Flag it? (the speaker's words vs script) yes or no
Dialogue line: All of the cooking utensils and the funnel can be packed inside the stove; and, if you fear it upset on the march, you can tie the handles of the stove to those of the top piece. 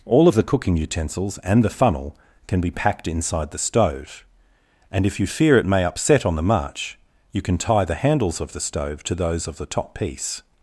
yes